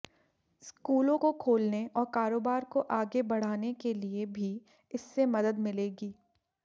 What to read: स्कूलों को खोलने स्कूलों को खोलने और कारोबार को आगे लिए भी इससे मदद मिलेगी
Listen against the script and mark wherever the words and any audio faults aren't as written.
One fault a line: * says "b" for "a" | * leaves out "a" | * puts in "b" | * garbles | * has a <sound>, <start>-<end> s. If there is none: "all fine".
* leaves out "स्कूलों को खोलने"
* puts in "बढ़ाने के"